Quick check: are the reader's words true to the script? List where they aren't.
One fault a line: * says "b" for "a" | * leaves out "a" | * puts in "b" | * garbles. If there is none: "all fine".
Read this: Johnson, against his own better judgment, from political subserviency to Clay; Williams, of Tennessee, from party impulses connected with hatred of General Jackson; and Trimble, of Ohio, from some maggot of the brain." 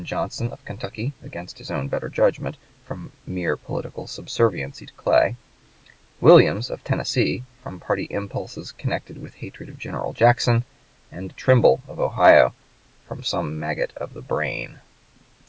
* puts in "of Kentucky"
* puts in "mere"